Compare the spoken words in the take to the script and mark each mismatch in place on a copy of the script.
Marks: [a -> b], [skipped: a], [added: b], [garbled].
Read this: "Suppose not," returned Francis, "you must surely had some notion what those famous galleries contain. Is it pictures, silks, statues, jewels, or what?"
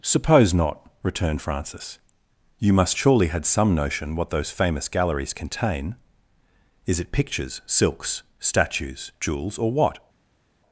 "Suppose not," returned Francis, "you must surely had some notion what those famous galleries contain. Is it pictures, silks, statues, jewels, or what?"